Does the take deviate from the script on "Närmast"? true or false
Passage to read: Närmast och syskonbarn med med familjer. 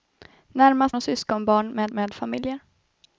false